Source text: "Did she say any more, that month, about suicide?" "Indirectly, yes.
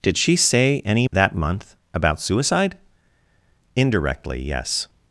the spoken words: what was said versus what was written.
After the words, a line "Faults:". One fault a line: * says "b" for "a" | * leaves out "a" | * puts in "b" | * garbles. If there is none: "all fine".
"Did she say any that month, about suicide?" "Indirectly, yes.
Faults:
* leaves out "more"